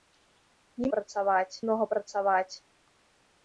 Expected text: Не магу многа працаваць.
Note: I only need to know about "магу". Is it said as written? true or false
false